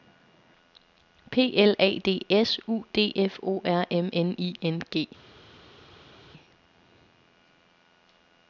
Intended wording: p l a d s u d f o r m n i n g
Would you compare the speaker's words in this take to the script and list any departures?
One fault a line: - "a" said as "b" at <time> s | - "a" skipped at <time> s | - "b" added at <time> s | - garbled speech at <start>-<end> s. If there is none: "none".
none